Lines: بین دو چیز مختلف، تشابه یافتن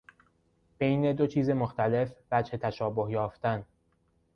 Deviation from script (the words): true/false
true